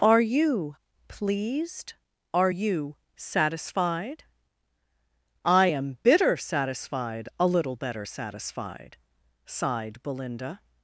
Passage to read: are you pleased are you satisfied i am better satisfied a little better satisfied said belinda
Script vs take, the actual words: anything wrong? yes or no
yes